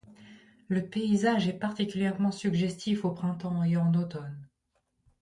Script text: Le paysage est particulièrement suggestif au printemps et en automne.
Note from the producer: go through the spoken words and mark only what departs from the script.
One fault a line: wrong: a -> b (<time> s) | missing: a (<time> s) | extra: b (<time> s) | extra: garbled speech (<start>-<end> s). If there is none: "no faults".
no faults